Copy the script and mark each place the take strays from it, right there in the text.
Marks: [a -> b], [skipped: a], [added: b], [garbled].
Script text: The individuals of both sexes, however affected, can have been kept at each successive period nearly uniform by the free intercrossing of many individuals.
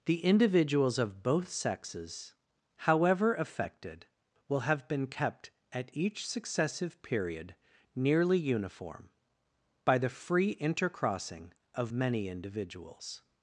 The individuals of both sexes, however affected, [can -> will] have been kept at each successive period nearly uniform by the free intercrossing of many individuals.